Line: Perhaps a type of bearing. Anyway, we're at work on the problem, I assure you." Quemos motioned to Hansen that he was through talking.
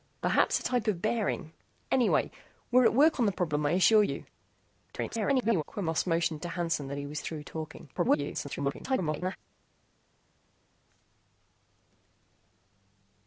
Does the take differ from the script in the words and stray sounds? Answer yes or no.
yes